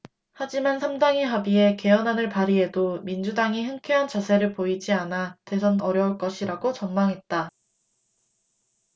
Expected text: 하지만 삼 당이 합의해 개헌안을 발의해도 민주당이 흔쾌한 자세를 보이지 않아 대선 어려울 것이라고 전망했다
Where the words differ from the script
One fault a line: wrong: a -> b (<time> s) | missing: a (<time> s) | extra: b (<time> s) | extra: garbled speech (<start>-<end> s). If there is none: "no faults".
no faults